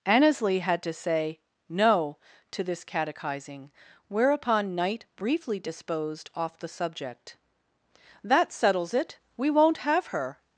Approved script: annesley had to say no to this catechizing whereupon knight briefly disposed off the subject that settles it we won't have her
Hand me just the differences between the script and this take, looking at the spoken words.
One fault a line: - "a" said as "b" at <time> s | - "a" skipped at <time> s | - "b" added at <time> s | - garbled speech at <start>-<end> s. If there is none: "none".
none